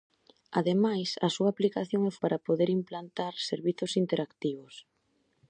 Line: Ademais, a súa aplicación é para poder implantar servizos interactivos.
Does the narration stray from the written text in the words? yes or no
no